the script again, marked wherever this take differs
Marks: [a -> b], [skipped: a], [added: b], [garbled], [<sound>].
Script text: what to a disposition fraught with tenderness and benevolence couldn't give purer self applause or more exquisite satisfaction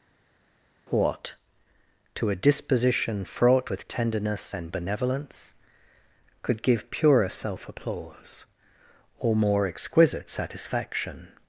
what to a disposition fraught with tenderness and benevolence [couldn't -> could] give purer self applause or more exquisite satisfaction